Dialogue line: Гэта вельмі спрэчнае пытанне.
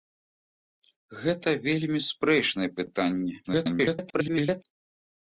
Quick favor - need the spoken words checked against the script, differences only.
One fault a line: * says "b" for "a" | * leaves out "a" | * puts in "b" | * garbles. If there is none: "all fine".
* garbles